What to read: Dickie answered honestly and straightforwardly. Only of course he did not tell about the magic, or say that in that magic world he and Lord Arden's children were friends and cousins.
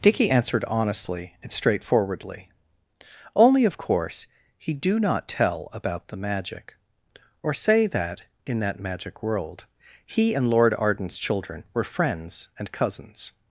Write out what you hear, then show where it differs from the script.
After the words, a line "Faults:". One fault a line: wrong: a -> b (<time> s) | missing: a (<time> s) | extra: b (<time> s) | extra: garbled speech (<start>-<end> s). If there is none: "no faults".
Dickie answered honestly and straightforwardly. Only of course he do not tell about the magic, or say that in that magic world he and Lord Arden's children were friends and cousins.
Faults:
wrong: did -> do (4.7 s)